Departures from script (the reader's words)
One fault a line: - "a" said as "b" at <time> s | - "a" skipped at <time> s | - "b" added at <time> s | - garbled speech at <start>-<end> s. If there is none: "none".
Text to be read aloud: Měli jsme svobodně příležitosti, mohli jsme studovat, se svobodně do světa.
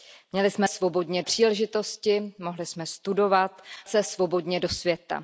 none